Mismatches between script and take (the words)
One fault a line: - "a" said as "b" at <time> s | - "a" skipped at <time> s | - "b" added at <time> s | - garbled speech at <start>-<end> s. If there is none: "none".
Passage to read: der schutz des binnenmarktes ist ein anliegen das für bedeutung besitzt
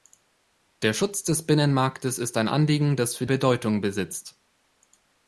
none